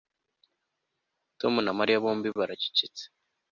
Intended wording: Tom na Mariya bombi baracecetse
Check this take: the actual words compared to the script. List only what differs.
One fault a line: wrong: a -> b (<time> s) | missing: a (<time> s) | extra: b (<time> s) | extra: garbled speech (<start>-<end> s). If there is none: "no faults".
no faults